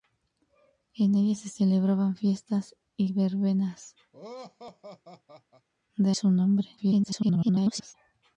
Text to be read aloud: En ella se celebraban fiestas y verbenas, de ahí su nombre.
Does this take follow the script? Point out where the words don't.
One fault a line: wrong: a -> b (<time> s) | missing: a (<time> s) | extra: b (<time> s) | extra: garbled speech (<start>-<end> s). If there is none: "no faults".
missing: ahí (6.1 s)
extra: garbled speech (6.8-7.9 s)